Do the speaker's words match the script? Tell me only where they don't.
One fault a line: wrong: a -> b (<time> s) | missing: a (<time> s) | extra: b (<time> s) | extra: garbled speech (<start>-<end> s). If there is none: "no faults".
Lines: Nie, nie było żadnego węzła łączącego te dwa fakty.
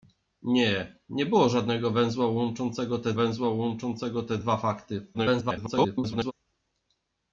extra: węzła łączącego te (3.1 s)
extra: garbled speech (5.1-6.3 s)